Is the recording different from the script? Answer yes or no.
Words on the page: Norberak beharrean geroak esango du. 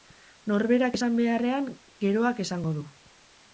yes